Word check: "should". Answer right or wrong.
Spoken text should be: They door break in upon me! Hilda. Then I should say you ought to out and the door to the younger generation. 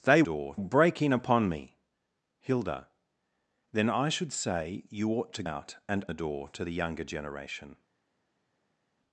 right